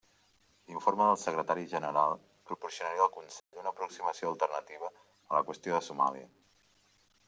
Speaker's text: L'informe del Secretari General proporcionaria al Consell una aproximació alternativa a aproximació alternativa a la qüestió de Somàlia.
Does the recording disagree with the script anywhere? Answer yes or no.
yes